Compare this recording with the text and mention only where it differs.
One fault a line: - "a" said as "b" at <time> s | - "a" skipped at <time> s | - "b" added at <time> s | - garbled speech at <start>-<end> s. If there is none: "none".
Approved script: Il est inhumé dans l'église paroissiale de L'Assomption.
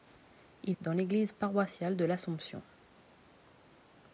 - "est inhumé" skipped at 0.8 s